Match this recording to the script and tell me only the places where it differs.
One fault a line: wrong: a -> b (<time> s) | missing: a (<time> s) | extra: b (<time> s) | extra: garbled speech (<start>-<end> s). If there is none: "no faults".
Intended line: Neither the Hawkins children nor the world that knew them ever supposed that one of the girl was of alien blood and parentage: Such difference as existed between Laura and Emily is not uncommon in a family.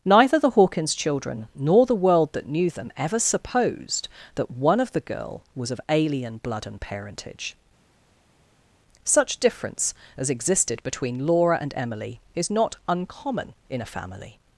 no faults